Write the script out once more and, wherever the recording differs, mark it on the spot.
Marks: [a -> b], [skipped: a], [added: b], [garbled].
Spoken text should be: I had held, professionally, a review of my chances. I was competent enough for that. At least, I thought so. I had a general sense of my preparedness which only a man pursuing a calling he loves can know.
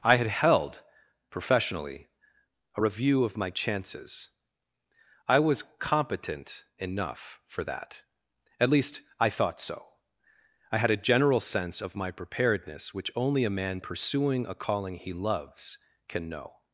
I had held, professionally, a review of my chances. I was competent enough for that. At least, I thought so. I had a general sense of my preparedness which only a man pursuing a calling he loves can know.